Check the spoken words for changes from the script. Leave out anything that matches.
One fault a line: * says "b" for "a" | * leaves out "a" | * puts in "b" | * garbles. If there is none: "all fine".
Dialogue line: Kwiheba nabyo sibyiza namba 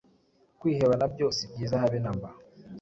* puts in "habe"